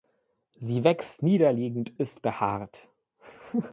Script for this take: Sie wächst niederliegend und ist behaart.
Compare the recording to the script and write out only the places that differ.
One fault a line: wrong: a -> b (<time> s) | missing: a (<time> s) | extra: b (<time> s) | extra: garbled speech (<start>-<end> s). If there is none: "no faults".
missing: und (1.9 s)